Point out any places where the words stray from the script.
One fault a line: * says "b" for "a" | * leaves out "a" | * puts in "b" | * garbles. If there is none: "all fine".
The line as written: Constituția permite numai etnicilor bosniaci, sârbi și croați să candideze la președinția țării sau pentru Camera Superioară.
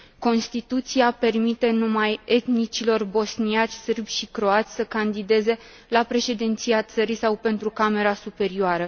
all fine